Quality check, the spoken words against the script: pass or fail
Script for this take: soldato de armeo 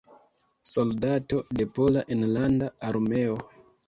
fail